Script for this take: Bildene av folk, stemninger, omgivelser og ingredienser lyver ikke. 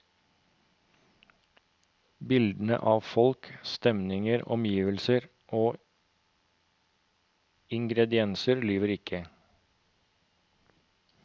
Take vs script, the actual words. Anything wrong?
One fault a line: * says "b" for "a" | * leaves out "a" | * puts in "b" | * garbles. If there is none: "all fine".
all fine